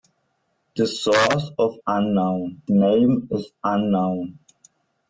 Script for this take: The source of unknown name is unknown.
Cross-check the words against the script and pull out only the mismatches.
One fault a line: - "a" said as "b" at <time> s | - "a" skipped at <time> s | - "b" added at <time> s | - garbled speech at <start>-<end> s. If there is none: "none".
none